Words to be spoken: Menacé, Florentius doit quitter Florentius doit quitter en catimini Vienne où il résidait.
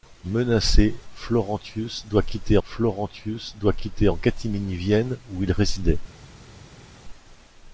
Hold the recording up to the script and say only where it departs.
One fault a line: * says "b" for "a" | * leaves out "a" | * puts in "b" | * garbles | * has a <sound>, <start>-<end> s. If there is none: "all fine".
all fine